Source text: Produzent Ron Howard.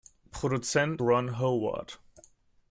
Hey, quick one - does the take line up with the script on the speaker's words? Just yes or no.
yes